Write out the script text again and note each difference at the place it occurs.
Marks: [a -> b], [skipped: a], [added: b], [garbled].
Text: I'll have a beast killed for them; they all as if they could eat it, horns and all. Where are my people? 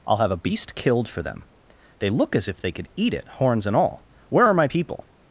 I'll have a beast killed for them; they [all -> look] as if they could eat it, horns and all. Where are my people?